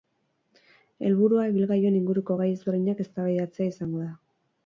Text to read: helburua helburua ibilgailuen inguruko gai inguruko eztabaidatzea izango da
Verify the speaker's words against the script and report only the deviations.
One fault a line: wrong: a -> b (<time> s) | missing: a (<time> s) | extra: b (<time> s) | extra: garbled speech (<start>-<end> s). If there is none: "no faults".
missing: helburua (1.4 s)
wrong: inguruko -> ezberdinak (2.5 s)